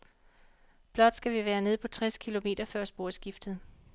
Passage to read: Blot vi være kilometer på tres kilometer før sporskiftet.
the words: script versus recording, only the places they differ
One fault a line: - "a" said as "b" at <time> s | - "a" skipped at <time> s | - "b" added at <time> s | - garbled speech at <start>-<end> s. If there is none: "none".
- "skal" added at 1.1 s
- "kilometer" said as "nede" at 1.6 s